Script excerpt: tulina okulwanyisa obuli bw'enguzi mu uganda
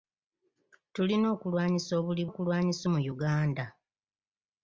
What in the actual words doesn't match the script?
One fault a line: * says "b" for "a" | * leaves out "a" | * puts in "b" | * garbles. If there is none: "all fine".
* says "okulwanyisa" for "bw'enguzi"